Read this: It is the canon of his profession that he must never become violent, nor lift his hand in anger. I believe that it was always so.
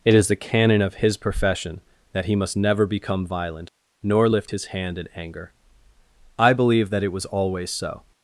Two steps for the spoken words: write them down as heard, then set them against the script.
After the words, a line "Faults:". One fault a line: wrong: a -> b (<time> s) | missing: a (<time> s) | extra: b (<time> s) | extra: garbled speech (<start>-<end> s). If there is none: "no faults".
It is the canon of his profession that he must never become violent, nor lift his hand in anger. I believe that it was always so.
Faults:
no faults